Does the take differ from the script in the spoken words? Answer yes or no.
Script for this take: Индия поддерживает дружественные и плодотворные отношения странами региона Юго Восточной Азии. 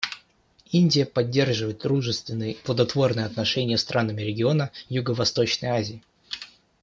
no